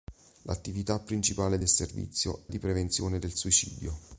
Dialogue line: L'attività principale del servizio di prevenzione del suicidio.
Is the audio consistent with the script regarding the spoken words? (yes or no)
yes